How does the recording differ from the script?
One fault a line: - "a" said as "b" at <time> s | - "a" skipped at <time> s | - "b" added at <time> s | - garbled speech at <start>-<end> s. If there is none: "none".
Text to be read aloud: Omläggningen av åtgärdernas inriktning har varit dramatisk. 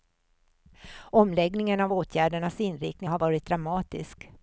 none